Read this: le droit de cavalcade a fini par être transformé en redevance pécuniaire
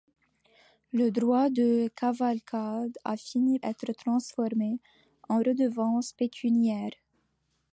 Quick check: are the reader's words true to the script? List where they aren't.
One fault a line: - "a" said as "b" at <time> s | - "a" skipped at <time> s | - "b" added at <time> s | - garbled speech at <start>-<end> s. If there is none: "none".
- "par" skipped at 3.6 s